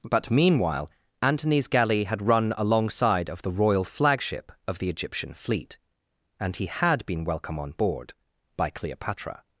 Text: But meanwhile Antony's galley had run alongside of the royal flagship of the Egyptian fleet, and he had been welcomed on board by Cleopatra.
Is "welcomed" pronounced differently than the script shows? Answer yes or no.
yes